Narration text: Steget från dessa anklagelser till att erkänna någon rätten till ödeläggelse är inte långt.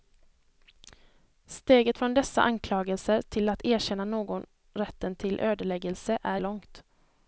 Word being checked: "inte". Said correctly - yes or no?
no